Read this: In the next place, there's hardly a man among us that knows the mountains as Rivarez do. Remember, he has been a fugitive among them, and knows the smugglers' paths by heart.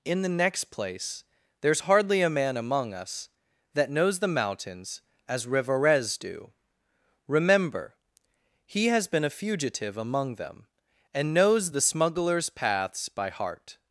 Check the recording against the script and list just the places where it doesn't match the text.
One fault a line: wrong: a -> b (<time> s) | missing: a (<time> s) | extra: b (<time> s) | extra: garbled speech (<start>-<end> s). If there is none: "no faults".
no faults